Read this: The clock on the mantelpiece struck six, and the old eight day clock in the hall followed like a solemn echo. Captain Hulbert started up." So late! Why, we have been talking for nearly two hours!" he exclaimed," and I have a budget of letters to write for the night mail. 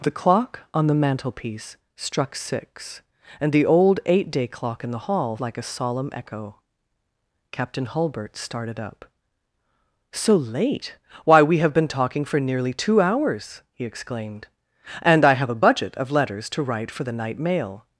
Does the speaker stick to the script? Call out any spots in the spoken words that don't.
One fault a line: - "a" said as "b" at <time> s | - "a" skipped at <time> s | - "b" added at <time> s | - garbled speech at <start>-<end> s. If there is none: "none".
- "followed" skipped at 5.4 s